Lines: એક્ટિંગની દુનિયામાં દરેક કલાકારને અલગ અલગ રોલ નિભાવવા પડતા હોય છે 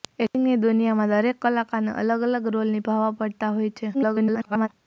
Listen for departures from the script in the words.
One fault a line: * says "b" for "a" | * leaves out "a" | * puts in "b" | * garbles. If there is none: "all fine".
* garbles